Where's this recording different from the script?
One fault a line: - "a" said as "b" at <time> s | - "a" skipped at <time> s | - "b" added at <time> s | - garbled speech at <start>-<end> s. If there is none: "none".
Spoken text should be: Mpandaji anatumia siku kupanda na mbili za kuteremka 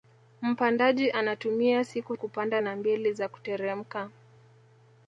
none